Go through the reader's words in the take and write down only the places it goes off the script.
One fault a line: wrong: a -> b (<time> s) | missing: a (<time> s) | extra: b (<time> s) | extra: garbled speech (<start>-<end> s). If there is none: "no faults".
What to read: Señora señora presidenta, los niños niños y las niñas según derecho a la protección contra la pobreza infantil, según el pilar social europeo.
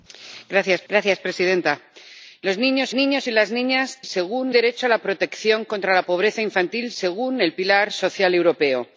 no faults